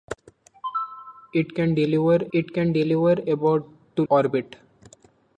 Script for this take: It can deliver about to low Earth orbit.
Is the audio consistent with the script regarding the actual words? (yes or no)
no